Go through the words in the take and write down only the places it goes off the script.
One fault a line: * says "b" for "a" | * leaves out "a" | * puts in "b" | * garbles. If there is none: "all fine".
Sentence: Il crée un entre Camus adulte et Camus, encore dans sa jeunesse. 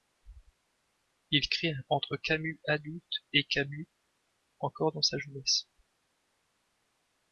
all fine